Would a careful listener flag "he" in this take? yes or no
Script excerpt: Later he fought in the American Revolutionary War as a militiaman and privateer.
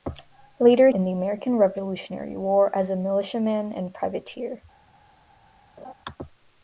yes